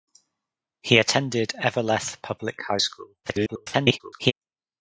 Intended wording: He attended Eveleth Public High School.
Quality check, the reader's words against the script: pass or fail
fail